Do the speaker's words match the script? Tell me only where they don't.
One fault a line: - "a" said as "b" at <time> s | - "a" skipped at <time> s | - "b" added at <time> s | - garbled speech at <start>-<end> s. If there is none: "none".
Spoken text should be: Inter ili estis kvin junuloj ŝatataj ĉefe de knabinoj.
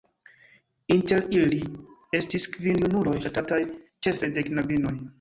none